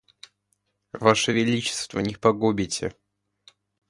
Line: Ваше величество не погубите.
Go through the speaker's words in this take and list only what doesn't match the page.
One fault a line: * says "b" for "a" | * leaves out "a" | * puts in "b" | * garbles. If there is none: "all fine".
all fine